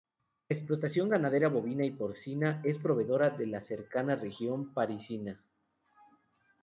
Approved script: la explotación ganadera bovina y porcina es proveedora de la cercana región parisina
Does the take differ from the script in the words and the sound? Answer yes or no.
no